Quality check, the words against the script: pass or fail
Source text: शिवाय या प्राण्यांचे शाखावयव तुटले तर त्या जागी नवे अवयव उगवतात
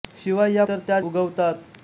fail